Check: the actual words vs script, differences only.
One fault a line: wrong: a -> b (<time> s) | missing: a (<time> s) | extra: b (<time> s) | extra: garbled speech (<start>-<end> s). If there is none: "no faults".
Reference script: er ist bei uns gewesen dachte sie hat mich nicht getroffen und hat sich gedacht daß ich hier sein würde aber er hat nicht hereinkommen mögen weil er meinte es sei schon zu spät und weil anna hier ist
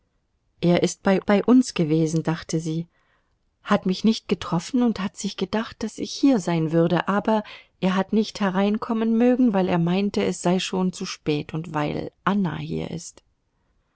extra: bei (1.3 s)